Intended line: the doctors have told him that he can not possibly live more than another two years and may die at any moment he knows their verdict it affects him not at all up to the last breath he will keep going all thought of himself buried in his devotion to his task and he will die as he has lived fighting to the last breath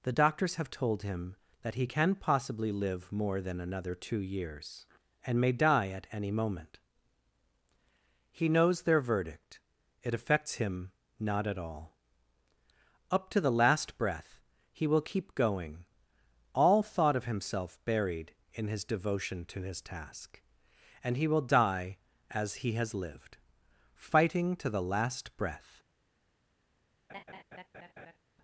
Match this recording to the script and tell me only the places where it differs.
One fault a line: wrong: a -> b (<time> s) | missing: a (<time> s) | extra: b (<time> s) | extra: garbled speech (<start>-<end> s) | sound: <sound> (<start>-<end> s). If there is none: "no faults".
missing: not (2.1 s)
sound: laugh (27.1-28.2 s)